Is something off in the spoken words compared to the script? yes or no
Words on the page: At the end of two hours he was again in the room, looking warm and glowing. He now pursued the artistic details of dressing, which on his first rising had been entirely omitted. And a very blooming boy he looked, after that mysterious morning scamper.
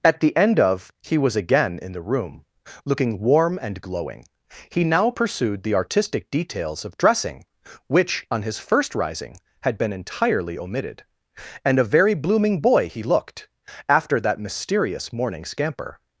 yes